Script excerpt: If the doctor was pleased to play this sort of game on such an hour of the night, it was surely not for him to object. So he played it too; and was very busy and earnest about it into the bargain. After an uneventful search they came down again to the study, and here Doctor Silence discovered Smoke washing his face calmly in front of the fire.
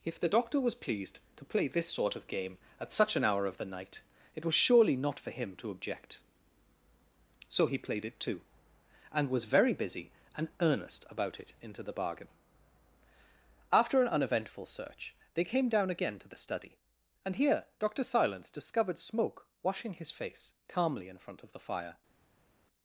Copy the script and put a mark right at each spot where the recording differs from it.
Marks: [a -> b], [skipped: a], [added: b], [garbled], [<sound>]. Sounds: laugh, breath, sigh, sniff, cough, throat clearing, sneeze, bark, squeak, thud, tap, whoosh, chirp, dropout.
If the doctor was pleased to play this sort of game [on -> at] such an hour of the night, it was surely not for him to object. So he played it too; and was very busy and earnest about it into the bargain. After an uneventful search they came down again to the study, and here Doctor Silence discovered Smoke washing his face calmly in front of the fire.